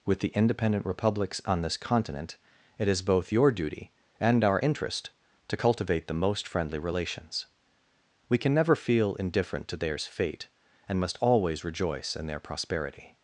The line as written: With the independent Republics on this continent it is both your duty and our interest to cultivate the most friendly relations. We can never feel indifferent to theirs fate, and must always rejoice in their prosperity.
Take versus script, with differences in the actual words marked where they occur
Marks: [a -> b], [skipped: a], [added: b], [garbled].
With the independent Republics on this continent it is both your duty and our interest to cultivate the most friendly relations. We can never feel indifferent to theirs fate, and must always rejoice in their prosperity.